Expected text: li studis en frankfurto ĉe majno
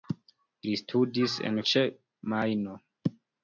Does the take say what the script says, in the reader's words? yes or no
no